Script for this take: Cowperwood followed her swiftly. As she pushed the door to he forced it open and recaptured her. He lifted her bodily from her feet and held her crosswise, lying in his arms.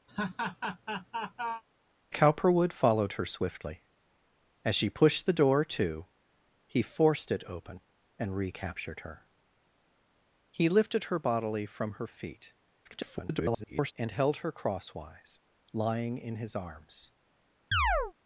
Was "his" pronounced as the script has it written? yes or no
yes